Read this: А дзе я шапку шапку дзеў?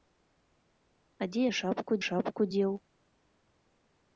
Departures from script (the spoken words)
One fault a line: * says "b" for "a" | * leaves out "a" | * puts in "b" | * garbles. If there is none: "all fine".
all fine